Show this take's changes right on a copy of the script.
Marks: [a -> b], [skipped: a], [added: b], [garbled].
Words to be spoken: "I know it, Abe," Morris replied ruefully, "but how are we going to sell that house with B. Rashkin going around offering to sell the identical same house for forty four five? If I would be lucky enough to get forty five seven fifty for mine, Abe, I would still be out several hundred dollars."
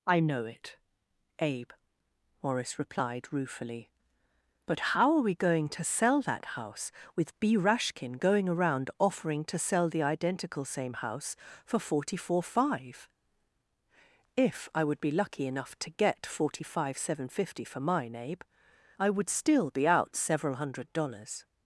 "I know it, Abe," Morris replied ruefully, "but how are we going to sell that house with B. Rashkin going around offering to sell the identical same house for forty four five? If I would be lucky enough to get forty five seven fifty for mine, Abe, I would still be out several hundred dollars."